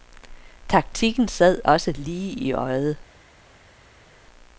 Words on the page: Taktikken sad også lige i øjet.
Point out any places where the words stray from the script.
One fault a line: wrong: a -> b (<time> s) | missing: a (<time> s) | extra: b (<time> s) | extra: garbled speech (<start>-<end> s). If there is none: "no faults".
no faults